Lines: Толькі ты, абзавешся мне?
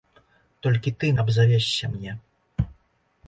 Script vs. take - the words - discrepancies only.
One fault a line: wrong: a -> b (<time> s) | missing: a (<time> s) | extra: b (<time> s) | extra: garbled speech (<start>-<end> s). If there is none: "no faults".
no faults